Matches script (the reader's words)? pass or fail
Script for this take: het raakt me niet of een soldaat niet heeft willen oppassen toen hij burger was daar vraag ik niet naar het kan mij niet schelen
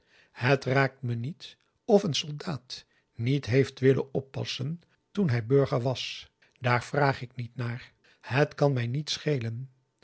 pass